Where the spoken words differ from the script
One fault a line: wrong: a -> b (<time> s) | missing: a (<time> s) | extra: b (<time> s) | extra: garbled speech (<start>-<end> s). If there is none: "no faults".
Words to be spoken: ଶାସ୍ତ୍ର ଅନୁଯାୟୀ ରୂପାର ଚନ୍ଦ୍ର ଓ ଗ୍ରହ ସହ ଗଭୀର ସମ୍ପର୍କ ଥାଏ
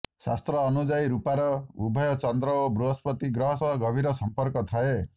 extra: ଉଭୟ (1.8 s)
extra: ବୃହସ୍ପତି (2.7 s)